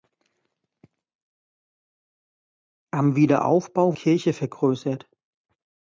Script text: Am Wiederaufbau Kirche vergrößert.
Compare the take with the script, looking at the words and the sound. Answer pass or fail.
pass